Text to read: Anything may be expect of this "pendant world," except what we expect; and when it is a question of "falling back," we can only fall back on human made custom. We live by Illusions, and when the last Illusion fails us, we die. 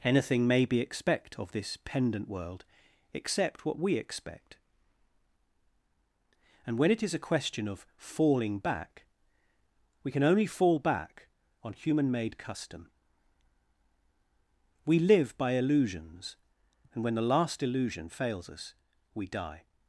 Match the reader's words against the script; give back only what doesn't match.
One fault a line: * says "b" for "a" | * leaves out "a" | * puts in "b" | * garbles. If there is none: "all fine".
all fine